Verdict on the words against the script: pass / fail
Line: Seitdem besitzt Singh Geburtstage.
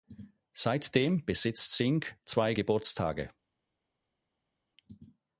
fail